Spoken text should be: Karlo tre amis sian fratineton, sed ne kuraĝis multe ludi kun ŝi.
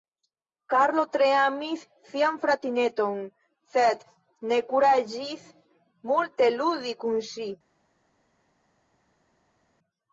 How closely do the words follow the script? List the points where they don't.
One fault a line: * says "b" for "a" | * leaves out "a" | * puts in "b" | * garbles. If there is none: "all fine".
all fine